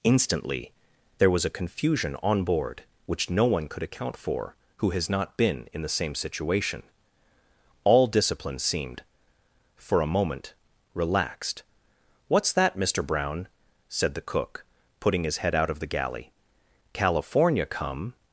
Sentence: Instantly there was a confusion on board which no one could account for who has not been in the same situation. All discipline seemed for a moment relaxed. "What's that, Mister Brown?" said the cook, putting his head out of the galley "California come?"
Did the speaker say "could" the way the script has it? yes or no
yes